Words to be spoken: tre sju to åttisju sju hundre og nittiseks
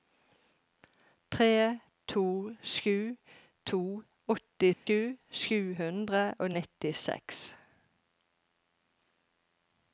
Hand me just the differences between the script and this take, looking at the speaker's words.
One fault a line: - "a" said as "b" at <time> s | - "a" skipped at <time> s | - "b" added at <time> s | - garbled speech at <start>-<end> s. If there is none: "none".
- "to" added at 2.1 s